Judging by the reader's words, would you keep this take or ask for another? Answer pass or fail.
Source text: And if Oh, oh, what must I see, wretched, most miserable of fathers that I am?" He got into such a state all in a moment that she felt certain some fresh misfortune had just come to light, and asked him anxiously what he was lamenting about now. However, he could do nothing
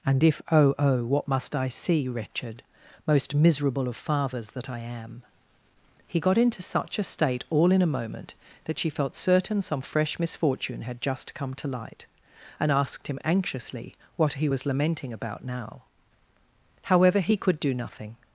pass